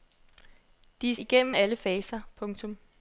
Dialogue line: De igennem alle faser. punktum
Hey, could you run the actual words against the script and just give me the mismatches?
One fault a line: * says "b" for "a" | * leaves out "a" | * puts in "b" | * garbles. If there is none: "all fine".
all fine